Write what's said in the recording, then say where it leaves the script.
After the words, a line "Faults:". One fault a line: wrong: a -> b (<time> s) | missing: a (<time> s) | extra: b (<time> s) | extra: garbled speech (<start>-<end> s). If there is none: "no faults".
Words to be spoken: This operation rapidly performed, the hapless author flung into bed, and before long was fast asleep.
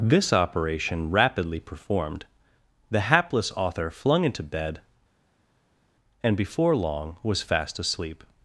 This operation rapidly performed, the hapless author flung into bed, and before long was fast asleep.
Faults:
no faults